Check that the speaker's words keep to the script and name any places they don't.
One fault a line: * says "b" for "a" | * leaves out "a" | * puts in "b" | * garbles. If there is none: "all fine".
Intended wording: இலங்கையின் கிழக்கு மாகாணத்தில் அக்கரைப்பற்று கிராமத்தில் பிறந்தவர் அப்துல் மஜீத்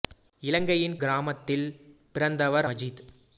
* leaves out "கிழக்கு மாகாணத்தில் அக்கரைப்பற்று"
* leaves out "அப்துல்"